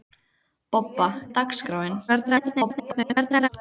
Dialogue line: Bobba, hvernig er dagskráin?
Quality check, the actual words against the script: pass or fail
fail